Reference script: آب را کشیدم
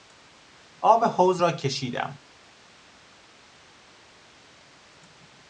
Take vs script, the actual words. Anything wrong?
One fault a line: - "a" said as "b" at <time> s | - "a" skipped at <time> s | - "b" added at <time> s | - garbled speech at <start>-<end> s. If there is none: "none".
- "حوض" added at 1.0 s